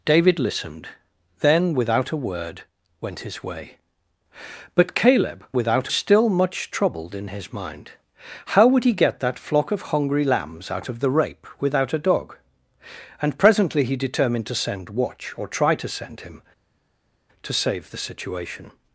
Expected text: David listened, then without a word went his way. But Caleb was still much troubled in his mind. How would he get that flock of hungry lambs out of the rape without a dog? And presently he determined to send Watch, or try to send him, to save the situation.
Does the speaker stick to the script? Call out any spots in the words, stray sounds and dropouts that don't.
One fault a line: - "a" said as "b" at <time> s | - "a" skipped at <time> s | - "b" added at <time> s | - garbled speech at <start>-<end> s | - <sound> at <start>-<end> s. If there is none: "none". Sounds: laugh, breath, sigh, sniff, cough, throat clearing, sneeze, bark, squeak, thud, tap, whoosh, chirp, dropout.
- "was" said as "without" at 5.5 s